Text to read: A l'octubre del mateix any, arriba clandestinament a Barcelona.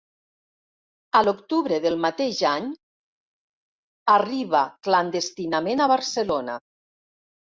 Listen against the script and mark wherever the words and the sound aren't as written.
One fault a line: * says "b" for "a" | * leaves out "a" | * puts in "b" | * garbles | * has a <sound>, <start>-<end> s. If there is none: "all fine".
all fine